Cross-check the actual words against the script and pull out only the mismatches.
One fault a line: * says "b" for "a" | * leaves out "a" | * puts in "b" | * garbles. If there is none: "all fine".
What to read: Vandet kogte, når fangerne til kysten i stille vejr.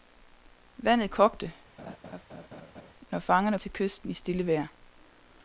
all fine